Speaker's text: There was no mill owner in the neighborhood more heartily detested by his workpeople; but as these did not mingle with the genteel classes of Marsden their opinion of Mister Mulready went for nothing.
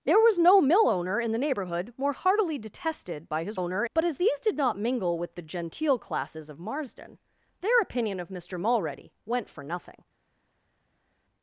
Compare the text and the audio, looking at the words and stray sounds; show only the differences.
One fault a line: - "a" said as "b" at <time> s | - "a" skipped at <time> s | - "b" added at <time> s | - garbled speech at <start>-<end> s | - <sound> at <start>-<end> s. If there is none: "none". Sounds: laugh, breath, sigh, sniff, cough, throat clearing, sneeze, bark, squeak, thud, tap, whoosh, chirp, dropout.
- "workpeople" said as "owner" at 3.5 s